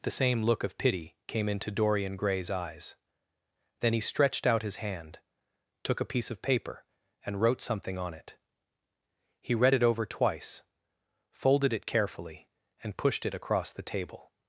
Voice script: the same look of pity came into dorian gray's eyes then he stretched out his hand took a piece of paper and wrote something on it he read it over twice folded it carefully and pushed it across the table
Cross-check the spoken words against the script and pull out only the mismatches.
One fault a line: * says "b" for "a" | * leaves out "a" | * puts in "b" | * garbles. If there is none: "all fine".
all fine